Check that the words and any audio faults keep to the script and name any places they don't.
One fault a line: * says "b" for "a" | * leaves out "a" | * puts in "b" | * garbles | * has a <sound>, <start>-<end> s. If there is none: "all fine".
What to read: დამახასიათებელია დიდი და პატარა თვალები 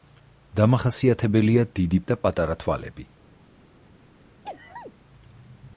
* has a sneeze, 4.4-4.9 s